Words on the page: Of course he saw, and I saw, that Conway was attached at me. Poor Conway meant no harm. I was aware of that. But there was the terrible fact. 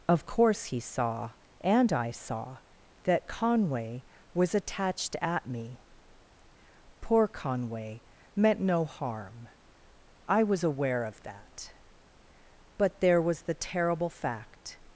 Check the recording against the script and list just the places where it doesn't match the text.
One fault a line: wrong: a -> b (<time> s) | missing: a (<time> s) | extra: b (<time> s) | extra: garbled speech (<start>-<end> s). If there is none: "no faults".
no faults